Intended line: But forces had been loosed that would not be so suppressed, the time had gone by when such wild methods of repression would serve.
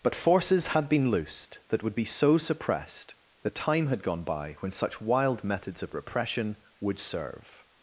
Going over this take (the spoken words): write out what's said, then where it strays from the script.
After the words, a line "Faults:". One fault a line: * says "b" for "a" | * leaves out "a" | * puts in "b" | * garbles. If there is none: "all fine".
But forces had been loosed that would be so suppressed, the time had gone by when such wild methods of repression would serve.
Faults:
* leaves out "not"